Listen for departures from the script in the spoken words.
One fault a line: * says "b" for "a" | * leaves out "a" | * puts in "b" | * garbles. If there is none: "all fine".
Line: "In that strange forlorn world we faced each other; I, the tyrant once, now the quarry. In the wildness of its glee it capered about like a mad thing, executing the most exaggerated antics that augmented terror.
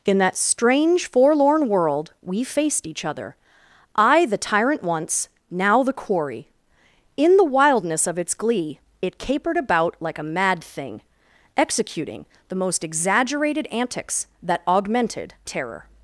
all fine